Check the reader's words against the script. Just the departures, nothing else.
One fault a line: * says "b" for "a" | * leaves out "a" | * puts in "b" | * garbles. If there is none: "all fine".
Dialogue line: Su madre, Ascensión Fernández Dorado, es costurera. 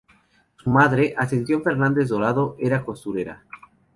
* says "era" for "es"